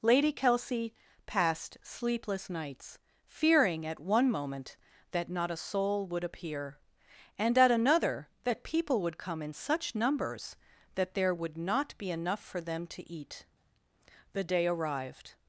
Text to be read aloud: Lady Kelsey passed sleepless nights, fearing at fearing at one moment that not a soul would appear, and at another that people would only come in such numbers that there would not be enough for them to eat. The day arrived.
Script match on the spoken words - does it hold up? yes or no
no